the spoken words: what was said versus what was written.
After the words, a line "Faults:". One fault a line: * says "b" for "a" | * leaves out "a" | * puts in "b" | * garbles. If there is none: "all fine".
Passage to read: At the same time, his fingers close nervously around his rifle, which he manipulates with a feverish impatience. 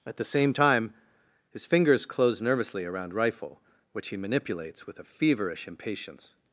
At the same time, his fingers close nervously around rifle, which he manipulates with a feverish impatience.
Faults:
* leaves out "his"